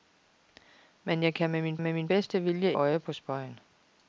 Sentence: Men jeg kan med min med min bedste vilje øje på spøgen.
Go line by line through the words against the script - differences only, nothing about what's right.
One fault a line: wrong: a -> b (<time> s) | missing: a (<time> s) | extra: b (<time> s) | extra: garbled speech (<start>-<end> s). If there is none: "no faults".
no faults